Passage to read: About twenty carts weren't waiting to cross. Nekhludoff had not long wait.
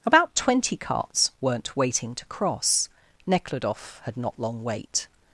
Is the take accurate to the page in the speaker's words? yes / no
yes